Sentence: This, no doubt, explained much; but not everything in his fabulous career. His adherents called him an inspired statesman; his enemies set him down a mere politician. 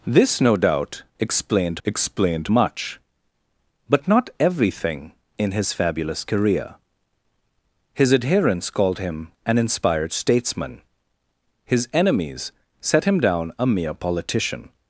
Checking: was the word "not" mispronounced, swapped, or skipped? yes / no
no